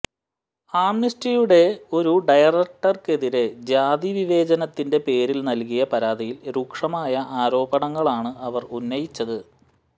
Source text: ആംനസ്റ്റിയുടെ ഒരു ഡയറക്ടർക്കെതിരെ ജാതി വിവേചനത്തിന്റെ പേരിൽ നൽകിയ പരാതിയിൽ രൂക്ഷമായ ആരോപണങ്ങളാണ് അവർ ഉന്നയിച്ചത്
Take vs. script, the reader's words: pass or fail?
pass